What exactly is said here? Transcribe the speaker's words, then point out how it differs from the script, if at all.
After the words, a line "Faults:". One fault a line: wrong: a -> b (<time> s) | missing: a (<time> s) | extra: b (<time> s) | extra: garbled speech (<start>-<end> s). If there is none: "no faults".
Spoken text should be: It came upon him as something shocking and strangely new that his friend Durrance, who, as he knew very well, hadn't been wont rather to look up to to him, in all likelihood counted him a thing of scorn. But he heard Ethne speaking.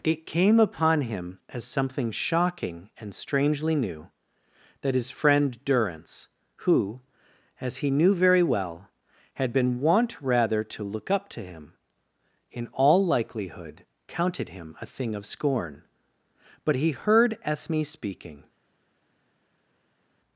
It came upon him as something shocking and strangely new that his friend Durrance, who, as he knew very well, had been wont rather to look up to him, in all likelihood counted him a thing of scorn. But he heard Ethne speaking.
Faults:
wrong: hadn't -> had (9.3 s)
missing: to (11.4 s)